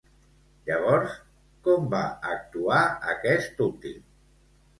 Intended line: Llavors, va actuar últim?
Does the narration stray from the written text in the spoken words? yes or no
yes